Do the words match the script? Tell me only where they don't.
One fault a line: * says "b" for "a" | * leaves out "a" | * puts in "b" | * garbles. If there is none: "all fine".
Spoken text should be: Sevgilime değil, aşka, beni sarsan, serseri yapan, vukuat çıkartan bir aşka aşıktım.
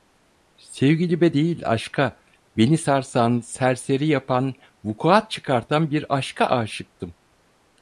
all fine